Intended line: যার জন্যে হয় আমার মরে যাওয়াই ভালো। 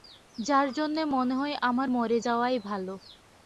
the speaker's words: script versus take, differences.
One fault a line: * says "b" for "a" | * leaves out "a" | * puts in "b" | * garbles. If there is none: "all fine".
* puts in "মনে"